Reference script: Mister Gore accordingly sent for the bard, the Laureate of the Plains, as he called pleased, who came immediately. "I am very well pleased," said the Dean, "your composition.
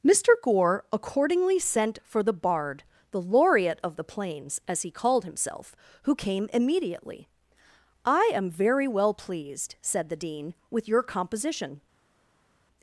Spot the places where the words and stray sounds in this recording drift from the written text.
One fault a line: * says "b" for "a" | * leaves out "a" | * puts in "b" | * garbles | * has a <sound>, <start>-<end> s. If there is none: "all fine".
* says "himself" for "pleased"
* puts in "with"